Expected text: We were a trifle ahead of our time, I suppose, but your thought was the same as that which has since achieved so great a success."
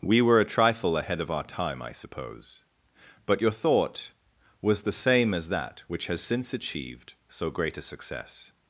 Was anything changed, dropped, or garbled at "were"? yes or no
no